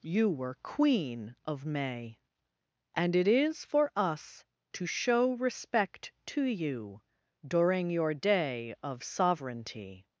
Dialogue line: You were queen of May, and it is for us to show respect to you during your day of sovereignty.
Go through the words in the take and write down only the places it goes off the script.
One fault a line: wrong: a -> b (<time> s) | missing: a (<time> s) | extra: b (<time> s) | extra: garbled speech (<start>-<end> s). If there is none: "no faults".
no faults